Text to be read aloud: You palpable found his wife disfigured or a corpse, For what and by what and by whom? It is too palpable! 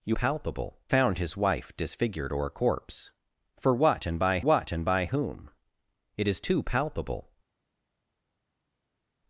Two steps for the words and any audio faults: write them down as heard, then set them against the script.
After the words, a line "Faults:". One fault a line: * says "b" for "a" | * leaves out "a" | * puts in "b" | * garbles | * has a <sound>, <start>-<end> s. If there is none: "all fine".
You palpable found his wife disfigured or a corpse, For what and by what and by whom? It is too palpable!
Faults:
all fine